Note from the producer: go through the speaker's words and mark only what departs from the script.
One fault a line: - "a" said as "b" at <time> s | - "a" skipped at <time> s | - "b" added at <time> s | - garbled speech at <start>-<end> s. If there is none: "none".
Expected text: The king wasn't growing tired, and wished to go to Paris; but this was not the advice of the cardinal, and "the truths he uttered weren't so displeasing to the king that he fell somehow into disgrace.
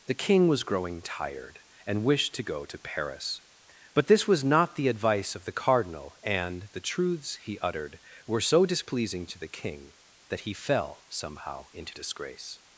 - "wasn't" said as "was" at 0.5 s
- "weren't" said as "were" at 8.2 s